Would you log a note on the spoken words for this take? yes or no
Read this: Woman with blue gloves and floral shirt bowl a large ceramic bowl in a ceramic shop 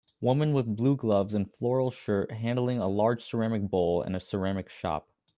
yes